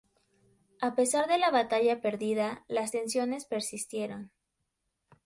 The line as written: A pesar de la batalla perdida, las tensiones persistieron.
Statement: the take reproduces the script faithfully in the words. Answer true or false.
true